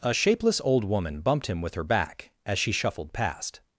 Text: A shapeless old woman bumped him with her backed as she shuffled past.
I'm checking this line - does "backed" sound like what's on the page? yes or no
no